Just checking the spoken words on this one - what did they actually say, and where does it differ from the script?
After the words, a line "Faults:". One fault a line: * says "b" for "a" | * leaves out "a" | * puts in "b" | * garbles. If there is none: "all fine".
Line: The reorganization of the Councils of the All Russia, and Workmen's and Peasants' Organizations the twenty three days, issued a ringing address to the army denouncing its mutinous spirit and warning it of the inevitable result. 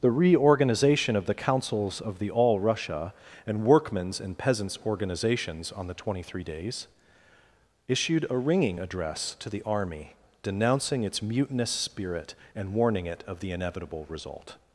The reorganization of the Councils of the All Russia, and Workmen's and Peasants' Organizations on the twenty three days, issued a ringing address to the army denouncing its mutinous spirit and warning it of the inevitable result.
Faults:
* puts in "on"